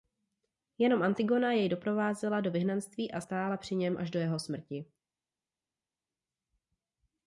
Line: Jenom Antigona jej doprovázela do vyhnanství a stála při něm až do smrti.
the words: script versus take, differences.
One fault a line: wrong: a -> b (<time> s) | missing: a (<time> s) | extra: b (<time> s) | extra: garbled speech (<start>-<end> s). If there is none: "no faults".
extra: jeho (4.2 s)